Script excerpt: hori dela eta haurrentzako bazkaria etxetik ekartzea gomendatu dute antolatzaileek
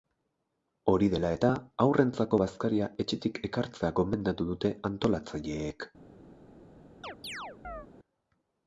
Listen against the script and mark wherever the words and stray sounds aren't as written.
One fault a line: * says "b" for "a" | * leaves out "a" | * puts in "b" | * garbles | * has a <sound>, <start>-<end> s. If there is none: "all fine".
* has a chirp, 7.0-7.9 s